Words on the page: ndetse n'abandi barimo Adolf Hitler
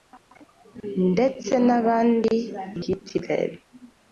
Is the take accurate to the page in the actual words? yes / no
no